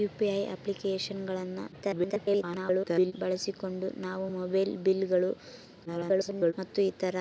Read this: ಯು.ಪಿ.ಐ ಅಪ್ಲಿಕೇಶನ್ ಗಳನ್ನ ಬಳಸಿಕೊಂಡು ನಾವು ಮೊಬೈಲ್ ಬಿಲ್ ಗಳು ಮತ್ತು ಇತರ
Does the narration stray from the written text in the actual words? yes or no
yes